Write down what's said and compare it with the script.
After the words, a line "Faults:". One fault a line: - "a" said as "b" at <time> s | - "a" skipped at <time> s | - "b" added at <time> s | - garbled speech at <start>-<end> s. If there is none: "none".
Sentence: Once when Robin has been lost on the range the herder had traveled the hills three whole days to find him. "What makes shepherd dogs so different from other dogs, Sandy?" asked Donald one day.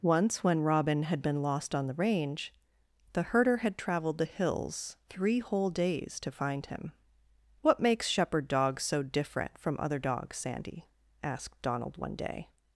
Once when Robin had been lost on the range the herder had traveled the hills three whole days to find him. "What makes shepherd dogs so different from other dogs, Sandy?" asked Donald one day.
Faults:
- "has" said as "had" at 1.0 s